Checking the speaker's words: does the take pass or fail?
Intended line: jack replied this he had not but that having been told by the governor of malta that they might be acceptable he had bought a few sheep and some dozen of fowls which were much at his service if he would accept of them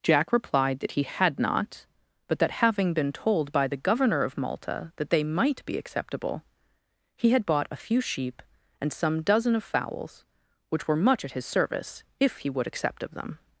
fail